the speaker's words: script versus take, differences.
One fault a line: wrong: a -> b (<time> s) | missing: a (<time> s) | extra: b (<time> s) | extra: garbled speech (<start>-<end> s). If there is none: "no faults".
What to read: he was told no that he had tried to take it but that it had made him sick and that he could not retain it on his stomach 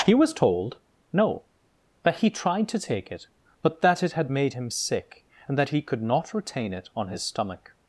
missing: had (2.3 s)